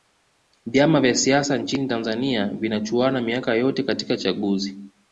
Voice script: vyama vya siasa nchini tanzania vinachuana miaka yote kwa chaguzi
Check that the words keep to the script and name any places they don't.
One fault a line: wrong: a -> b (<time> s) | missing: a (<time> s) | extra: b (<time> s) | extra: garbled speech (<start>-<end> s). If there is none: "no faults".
wrong: kwa -> katika (3.8 s)